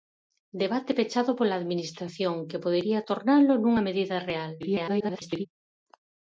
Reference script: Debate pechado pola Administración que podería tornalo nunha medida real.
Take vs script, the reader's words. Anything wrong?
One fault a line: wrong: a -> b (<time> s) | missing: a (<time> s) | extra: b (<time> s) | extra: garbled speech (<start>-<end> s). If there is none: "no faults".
extra: garbled speech (4.6-5.5 s)